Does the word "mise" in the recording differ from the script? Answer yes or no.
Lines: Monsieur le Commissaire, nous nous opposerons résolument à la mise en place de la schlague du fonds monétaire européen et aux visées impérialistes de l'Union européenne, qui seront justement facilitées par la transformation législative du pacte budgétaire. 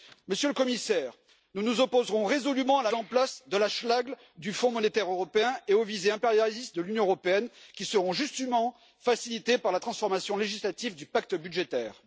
yes